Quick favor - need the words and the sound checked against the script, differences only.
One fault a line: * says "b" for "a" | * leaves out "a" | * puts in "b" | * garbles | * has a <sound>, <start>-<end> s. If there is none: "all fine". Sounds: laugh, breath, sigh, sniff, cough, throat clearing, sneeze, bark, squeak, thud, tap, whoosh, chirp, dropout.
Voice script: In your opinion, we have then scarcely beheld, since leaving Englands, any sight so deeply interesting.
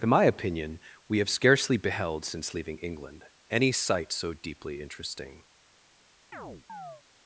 * says "my" for "your"
* leaves out "then"
* says "England" for "Englands"
* has a chirp, 6.3-7.0 s